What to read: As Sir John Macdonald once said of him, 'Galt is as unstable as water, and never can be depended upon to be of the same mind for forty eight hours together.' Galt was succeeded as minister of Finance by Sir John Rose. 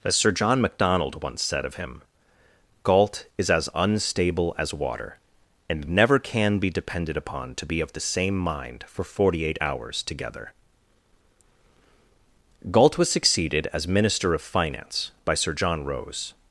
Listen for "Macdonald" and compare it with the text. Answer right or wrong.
right